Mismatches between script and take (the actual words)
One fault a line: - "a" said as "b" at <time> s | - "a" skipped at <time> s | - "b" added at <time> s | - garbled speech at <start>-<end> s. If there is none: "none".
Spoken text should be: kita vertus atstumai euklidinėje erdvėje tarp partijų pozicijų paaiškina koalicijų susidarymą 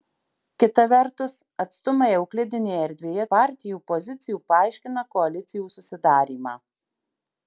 - "tarp" skipped at 3.2 s